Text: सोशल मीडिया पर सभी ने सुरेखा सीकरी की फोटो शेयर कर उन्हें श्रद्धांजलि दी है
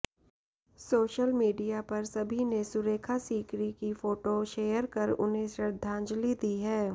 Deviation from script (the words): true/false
false